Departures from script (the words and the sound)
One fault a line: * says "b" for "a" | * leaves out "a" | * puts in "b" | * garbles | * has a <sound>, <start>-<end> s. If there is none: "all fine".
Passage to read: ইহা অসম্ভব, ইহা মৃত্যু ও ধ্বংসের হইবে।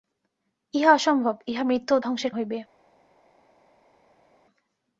all fine